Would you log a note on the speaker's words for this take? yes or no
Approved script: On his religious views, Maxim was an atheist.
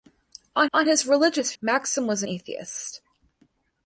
yes